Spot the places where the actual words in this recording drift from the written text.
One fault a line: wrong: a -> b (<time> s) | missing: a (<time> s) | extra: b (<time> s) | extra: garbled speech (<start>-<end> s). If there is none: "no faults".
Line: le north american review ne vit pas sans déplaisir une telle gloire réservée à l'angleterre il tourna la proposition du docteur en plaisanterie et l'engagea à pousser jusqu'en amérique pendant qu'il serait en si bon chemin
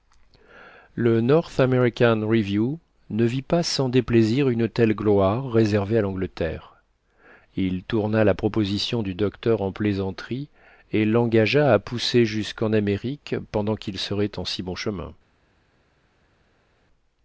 no faults